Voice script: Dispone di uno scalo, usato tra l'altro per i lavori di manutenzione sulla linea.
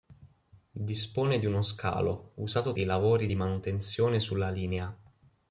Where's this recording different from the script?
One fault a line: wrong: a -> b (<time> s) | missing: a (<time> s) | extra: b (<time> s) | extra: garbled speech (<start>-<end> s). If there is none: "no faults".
missing: tra l'altro per (2.7 s)